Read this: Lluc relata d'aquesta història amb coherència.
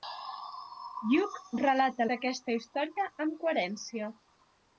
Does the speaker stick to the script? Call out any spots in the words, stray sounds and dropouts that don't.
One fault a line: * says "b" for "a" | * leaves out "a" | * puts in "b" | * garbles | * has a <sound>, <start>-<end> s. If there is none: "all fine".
all fine